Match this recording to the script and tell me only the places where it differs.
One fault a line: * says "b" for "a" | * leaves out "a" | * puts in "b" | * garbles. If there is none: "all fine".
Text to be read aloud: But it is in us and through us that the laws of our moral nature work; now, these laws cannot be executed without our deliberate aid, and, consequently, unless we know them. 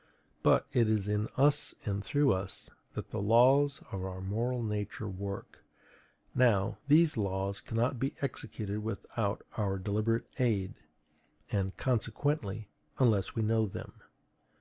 all fine